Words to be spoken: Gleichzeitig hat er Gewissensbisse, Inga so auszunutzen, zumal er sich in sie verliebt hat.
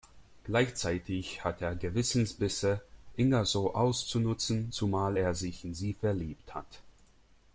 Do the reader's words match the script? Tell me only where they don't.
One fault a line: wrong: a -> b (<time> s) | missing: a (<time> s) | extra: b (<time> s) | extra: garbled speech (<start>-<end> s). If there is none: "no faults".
no faults